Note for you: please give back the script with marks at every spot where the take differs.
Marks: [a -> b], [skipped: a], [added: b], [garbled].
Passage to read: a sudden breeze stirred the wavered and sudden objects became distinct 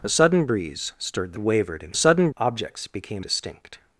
a sudden breeze stirred the wavered and sudden objects became distinct